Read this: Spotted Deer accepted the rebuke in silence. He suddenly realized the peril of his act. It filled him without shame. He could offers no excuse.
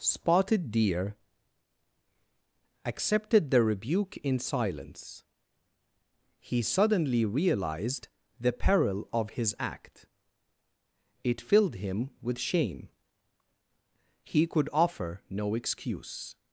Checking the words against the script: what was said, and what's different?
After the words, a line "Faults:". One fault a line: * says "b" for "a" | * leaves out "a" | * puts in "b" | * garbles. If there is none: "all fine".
Spotted Deer accepted the rebuke in silence. He suddenly realized the peril of his act. It filled him with shame. He could offer no excuse.
Faults:
* says "with" for "without"
* says "offer" for "offers"